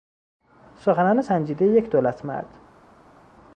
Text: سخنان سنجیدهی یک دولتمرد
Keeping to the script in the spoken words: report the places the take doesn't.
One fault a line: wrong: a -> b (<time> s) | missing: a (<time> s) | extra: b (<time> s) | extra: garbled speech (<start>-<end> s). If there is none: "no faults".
no faults